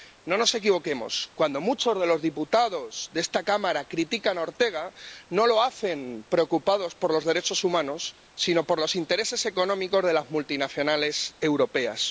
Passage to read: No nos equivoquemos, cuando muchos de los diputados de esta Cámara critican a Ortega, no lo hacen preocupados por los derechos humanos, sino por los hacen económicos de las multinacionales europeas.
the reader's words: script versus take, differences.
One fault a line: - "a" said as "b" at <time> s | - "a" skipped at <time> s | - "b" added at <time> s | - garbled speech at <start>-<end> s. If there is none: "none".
- "hacen" said as "intereses" at 9.0 s